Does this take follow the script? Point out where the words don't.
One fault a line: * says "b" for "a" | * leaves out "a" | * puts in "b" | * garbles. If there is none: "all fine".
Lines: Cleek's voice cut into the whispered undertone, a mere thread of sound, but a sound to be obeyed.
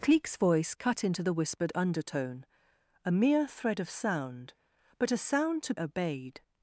* leaves out "be"